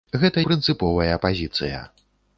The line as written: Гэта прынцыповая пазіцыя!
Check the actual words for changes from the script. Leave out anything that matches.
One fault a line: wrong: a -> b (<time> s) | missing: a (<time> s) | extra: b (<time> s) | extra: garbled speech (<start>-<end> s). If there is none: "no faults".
no faults